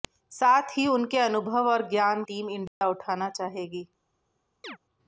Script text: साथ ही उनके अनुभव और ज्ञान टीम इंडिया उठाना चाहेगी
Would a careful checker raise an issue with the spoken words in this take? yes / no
no